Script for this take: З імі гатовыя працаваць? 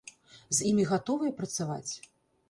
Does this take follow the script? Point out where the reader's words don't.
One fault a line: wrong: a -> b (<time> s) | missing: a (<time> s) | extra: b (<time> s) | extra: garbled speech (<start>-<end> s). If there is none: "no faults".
no faults